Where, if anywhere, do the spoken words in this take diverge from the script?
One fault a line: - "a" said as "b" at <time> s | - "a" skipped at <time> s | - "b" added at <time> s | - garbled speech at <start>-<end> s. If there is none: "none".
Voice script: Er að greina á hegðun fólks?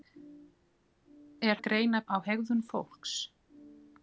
none